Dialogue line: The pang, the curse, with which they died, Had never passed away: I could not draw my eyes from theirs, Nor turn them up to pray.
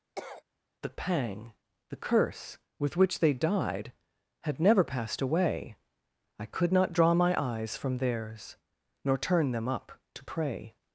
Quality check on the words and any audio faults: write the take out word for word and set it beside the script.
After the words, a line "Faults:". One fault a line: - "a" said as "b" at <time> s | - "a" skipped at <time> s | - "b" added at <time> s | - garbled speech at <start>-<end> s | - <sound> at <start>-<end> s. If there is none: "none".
The pang, the curse, with which they died, Had never passed away: I could not draw my eyes from theirs, Nor turn them up to pray.
Faults:
- cough at 0.2-0.4 s